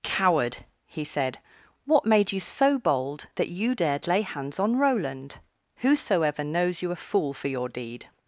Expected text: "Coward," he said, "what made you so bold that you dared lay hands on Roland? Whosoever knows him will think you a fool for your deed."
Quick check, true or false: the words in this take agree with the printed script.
false